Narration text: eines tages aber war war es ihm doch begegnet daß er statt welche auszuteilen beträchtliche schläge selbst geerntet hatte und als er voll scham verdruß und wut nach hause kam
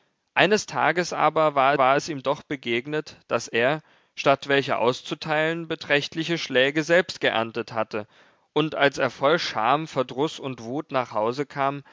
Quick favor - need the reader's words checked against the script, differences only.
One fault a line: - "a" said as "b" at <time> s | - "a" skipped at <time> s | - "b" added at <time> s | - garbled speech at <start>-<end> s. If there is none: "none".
none